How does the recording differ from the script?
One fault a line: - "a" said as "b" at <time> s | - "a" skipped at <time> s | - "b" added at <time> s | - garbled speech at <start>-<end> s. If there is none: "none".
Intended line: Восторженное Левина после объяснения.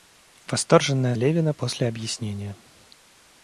none